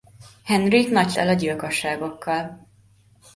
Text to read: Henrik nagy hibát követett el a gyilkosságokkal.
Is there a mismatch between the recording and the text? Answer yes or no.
yes